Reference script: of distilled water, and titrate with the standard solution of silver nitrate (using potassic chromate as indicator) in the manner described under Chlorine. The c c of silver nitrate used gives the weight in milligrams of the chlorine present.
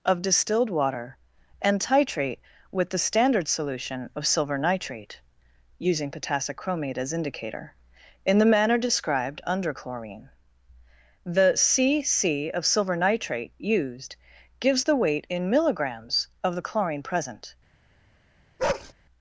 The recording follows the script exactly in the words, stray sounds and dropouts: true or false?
false